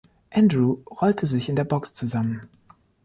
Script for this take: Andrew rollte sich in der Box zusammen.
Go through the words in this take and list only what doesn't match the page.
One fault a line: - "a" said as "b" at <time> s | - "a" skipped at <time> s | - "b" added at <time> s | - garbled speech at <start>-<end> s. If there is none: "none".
none